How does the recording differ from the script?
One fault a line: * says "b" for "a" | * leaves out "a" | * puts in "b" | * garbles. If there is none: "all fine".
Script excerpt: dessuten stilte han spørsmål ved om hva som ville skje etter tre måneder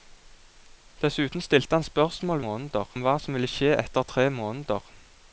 * says "måneder" for "ved"